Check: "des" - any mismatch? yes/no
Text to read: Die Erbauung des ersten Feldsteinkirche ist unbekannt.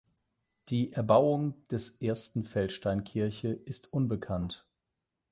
no